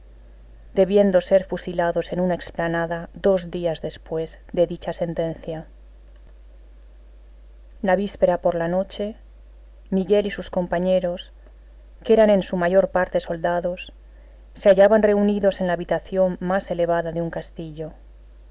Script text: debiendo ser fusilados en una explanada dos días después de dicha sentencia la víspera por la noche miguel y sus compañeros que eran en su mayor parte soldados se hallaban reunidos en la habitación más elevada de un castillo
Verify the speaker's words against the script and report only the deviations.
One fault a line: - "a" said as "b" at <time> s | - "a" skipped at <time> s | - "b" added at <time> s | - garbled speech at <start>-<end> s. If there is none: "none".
none